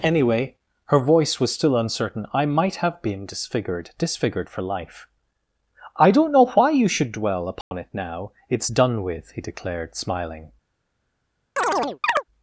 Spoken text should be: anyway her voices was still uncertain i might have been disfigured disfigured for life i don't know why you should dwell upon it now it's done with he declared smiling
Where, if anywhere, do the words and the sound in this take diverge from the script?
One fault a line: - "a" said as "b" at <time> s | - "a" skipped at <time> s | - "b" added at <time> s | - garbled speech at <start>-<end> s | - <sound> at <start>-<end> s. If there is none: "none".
- "voices" said as "voice" at 1.0 s
- dropout at 7.6-7.7 s
- chirp at 11.6-12.2 s